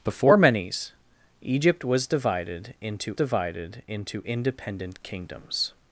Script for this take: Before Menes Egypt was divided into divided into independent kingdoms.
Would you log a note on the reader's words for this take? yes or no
no